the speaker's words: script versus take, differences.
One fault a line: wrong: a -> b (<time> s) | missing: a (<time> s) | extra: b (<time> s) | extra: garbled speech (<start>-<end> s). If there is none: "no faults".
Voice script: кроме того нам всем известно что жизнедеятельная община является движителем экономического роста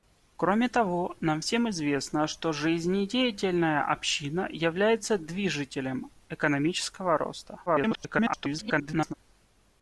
extra: garbled speech (7.7-9.1 s)